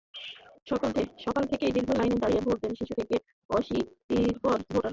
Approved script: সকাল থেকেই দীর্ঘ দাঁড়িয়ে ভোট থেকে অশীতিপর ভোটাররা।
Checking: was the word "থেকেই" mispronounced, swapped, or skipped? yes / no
no